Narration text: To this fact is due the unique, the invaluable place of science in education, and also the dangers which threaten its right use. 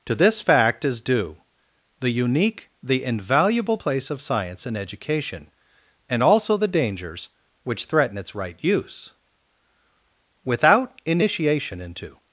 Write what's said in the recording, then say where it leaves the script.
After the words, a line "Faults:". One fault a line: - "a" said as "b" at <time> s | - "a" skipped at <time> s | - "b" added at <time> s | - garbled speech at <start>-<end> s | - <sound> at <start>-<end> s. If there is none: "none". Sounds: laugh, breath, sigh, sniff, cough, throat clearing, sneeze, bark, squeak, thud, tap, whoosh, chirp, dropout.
To this fact is due the unique, the invaluable place of science in education, and also the dangers which threaten its right use. Without initiation into
Faults:
- "Without initiation into" added at 10.4 s